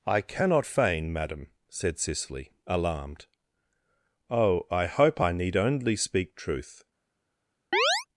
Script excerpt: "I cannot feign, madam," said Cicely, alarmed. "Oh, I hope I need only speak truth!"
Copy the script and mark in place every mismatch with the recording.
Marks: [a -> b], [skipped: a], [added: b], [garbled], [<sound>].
"I cannot feign, madam," said Cicely, alarmed. "Oh, I hope I need only speak truth!" [chirp]